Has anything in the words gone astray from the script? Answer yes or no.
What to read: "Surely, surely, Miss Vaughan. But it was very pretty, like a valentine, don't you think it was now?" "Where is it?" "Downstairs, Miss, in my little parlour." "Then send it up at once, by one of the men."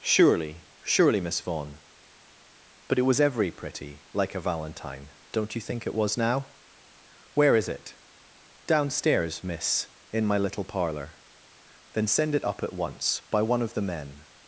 yes